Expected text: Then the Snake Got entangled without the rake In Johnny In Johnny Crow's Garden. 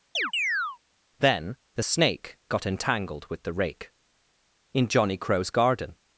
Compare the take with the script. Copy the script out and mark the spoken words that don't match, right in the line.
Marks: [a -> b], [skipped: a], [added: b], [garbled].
Then the Snake Got entangled [without -> with] the rake In Johnny [skipped: In Johnny] Crow's Garden.